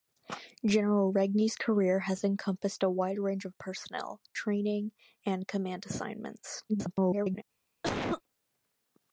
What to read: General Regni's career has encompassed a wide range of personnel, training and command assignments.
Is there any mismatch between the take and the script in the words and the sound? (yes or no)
yes